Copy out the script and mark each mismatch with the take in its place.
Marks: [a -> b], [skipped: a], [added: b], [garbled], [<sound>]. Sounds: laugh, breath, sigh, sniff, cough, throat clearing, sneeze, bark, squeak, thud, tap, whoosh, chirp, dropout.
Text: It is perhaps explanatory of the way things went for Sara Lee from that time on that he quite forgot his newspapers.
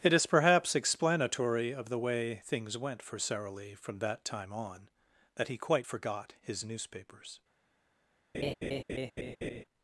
It is perhaps explanatory of the way things went for Sara Lee from that time on that he quite forgot his newspapers. [laugh]